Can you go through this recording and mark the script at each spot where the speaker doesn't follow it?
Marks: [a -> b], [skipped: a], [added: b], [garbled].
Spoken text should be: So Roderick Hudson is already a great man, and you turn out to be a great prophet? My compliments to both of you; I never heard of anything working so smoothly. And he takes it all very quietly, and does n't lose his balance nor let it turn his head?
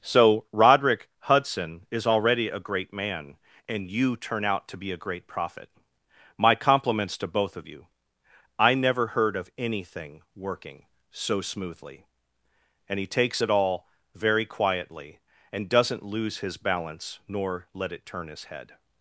So Roderick Hudson is already a great man, and you turn out to be a great prophet? My compliments to both of you; I never heard of anything working so smoothly. And he takes it all very quietly, and does n't lose his balance nor let it turn his head?